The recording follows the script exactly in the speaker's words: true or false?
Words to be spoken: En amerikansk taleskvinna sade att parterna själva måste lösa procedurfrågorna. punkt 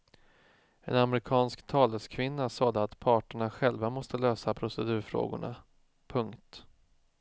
true